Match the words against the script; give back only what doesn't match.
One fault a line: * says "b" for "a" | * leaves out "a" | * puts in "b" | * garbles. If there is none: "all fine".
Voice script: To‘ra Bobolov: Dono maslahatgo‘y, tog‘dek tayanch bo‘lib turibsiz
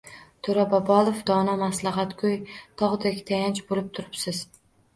all fine